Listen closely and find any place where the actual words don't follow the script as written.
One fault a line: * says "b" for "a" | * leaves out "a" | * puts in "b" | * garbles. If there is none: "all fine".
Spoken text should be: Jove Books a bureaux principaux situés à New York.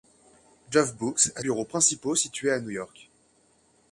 all fine